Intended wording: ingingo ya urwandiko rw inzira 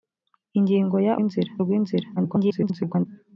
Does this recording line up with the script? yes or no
no